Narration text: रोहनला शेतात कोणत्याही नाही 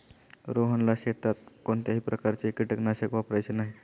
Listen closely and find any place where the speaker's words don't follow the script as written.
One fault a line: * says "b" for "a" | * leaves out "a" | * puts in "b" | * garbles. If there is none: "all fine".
* puts in "प्रकारचे कीटकनाशक वापरायचे"